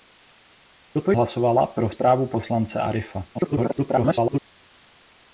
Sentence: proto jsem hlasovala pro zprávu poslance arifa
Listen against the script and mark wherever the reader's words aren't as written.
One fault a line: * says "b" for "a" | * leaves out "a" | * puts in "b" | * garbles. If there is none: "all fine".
* leaves out "jsem"
* garbles